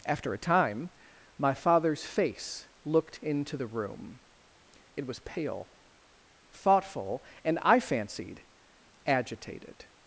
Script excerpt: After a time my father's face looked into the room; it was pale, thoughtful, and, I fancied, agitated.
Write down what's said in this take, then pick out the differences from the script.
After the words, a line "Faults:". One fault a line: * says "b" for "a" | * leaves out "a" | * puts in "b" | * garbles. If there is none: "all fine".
After a time my father's face looked into the room; it was pale, thoughtful, and, I fancied, agitated.
Faults:
all fine